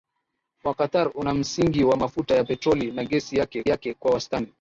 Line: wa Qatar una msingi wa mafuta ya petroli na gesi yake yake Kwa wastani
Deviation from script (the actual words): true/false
false